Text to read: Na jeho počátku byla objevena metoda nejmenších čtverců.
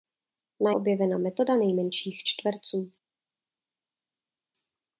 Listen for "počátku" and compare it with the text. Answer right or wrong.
wrong